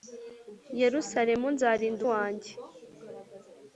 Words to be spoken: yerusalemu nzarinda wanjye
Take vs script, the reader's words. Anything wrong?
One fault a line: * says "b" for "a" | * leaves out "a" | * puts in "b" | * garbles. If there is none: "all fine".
all fine